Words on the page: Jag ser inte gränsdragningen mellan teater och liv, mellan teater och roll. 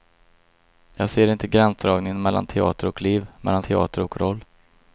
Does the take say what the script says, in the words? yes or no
yes